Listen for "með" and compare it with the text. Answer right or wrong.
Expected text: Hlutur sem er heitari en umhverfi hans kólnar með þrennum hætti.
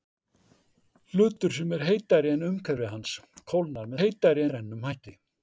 wrong